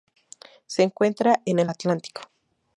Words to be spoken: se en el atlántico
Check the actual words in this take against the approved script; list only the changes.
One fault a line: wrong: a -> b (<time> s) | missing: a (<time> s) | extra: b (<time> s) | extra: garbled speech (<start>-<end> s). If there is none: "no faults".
extra: encuentra (0.8 s)